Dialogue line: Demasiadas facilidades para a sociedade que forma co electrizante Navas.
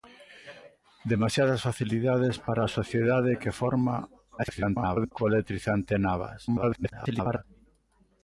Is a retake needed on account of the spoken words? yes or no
yes